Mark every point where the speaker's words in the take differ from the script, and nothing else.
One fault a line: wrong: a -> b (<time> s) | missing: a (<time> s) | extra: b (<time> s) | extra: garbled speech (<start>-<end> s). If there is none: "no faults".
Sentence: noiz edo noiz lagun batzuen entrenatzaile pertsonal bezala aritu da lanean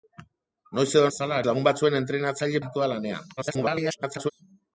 wrong: noiz -> bezala (1.1 s)
missing: pertsonal bezala (2.6 s)
extra: garbled speech (3.4-4.3 s)